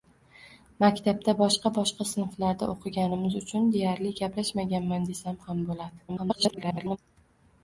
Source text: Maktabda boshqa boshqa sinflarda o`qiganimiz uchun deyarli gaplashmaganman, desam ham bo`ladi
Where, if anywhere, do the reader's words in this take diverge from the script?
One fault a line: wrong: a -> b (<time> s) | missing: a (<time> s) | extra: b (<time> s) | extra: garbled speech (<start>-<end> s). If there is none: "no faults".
extra: garbled speech (6.1-7.0 s)